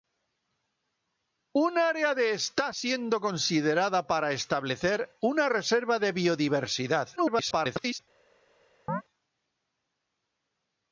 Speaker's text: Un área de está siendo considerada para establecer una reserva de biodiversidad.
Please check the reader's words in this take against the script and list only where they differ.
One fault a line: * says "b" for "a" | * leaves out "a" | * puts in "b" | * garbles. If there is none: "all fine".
* garbles